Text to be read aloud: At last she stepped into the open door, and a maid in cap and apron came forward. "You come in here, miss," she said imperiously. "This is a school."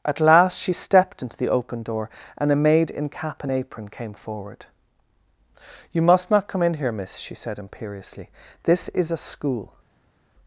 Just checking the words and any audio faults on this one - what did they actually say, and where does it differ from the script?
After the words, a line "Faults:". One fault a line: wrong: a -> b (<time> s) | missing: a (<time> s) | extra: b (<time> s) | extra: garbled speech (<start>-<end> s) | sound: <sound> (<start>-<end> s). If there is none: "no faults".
At last she stepped into the open door, and a maid in cap and apron came forward. "You must not come in here, miss," she said imperiously. "This is a school."
Faults:
extra: must not (6.0 s)